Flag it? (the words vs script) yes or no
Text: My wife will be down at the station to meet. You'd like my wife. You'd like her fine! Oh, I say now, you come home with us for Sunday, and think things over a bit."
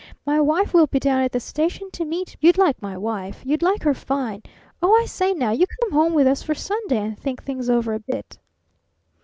no